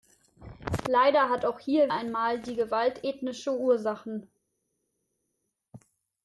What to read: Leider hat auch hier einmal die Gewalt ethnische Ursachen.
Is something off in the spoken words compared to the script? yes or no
no